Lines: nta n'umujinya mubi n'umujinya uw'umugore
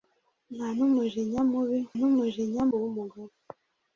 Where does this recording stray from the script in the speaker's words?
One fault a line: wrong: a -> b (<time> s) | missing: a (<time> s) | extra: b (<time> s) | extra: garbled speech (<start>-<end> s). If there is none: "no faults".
no faults